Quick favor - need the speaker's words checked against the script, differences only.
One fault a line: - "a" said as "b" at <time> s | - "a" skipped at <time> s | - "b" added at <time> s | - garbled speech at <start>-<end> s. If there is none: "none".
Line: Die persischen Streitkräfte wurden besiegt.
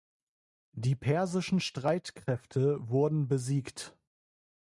none